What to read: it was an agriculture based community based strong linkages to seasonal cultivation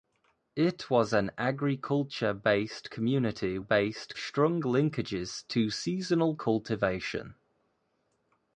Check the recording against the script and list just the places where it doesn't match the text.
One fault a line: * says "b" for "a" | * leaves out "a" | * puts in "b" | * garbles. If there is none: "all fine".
all fine